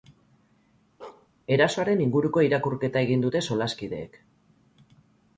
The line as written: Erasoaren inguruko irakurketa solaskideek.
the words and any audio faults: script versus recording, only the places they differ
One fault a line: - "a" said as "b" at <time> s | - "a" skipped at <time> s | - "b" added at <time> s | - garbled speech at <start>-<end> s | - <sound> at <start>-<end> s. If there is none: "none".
- bark at 1.0-1.3 s
- "egin dute" added at 3.1 s